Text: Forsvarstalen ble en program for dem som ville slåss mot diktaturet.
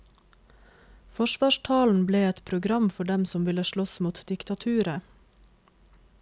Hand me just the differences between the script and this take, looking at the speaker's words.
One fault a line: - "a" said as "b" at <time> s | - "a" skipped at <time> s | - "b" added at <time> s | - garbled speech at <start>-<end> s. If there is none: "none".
- "en" said as "et" at 2.3 s